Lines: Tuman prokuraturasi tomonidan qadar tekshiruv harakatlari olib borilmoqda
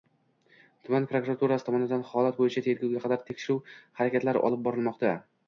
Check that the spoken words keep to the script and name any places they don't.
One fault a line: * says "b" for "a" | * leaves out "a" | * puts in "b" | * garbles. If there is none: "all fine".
* puts in "holat bo‘yicha tergovga"